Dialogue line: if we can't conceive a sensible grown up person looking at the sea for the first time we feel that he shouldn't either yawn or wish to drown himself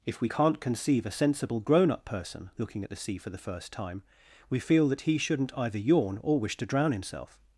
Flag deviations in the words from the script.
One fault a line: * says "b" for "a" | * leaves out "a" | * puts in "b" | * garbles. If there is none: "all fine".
all fine